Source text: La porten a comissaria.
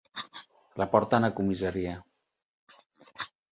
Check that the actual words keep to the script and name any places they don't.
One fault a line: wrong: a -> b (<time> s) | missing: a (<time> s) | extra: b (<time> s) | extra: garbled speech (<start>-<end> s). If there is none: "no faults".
no faults